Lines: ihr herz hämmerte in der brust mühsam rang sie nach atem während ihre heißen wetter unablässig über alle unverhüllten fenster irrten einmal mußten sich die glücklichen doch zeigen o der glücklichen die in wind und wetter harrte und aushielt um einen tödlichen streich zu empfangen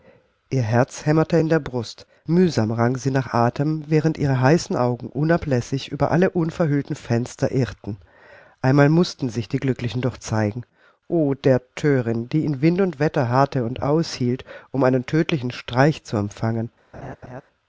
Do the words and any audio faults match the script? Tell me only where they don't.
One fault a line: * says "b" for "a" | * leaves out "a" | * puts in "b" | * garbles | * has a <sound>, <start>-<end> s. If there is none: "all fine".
* says "augen" for "wetter"
* says "thörin" for "glücklichen"
* has a laugh, 16.9-17.4 s